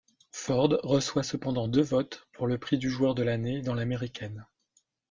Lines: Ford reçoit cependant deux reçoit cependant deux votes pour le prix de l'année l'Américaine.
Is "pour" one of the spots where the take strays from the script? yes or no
no